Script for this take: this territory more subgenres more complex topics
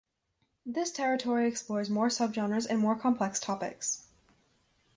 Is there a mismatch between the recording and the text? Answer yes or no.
yes